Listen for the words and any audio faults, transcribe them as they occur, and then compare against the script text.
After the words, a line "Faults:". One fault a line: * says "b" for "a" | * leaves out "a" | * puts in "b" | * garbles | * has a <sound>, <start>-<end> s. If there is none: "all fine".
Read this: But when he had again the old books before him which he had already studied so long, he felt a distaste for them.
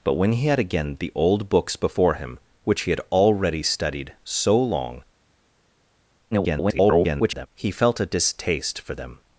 But when he had again the old books before him which he had already studied so long, [garbled] he felt a distaste for them.
Faults:
* garbles